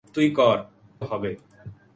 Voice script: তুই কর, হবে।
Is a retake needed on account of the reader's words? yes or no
no